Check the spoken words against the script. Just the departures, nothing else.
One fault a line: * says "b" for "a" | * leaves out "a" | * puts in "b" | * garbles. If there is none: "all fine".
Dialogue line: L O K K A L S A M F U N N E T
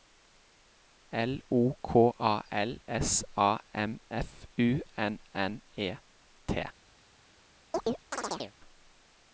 * leaves out "K"